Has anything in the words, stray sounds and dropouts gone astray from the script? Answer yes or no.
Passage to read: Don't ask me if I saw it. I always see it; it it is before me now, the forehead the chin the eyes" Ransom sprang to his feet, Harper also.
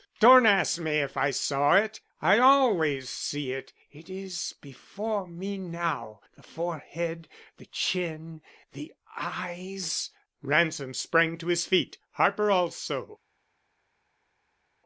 yes